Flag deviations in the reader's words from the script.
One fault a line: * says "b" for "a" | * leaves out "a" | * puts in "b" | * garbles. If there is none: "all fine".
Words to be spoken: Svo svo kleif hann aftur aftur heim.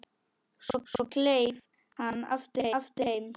all fine